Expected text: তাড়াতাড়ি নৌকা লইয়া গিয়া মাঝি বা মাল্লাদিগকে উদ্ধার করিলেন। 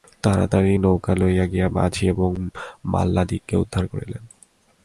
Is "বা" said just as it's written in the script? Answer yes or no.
no